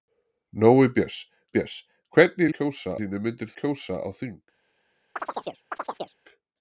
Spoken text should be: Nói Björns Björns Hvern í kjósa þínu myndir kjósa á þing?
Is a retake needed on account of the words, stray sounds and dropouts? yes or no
yes